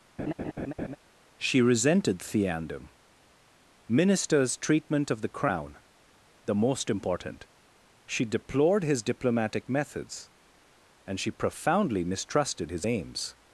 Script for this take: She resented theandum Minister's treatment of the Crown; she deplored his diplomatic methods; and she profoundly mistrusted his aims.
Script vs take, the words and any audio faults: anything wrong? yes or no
yes